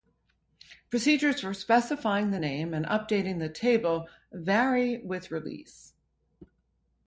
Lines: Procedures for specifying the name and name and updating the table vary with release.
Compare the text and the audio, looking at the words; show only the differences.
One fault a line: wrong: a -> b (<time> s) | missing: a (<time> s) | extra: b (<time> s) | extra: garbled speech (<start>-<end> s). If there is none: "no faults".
missing: name and (2.8 s)